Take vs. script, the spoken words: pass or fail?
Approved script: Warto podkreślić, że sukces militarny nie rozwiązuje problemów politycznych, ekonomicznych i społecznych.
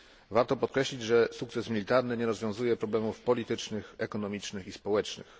pass